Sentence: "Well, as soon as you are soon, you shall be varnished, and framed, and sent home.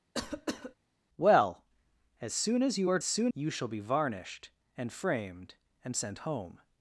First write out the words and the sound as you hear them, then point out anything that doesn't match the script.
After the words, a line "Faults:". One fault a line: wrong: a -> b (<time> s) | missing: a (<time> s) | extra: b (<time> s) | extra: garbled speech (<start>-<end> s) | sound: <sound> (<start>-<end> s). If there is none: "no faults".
"Well, as soon as you are soon, you shall be varnished, and framed, and sent home.
Faults:
sound: cough (0.1-0.7 s)